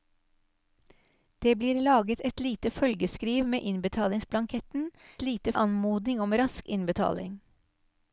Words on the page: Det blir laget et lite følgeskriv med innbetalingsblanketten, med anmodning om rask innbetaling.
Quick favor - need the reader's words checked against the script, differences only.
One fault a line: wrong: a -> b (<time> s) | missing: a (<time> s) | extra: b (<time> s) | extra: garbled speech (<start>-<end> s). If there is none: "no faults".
wrong: med -> lite (5.2 s)